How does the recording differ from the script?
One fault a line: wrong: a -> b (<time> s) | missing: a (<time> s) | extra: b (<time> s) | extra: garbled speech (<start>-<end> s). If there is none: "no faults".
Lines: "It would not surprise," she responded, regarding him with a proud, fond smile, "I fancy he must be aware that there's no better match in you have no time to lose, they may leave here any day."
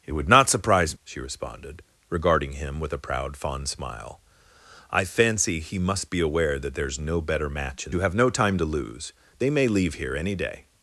no faults